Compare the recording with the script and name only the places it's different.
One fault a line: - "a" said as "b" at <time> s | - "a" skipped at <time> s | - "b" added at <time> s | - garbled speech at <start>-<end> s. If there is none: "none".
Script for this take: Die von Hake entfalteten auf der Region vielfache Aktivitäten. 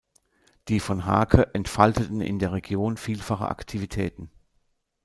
- "auf" said as "in" at 2.2 s